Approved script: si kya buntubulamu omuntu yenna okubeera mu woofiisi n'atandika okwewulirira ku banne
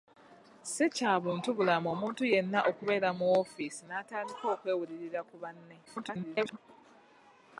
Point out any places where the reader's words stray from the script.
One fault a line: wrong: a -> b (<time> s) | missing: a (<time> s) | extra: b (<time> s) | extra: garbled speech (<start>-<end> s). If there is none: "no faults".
extra: garbled speech (5.9-6.6 s)